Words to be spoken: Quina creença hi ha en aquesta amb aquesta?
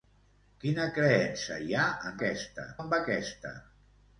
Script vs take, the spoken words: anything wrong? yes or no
no